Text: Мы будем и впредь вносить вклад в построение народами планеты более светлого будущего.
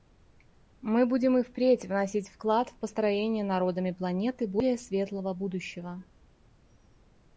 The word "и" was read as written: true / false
true